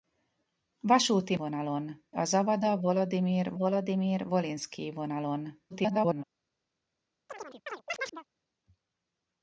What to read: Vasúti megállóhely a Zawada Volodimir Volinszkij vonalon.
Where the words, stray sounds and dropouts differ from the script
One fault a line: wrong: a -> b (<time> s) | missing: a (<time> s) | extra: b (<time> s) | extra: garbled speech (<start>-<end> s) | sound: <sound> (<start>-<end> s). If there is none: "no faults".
wrong: megállóhely -> vonalon (1.3 s)
extra: Volodimir (3.5 s)
extra: garbled speech (5.7-6.2 s)
sound: chirp (7.3-8.3 s)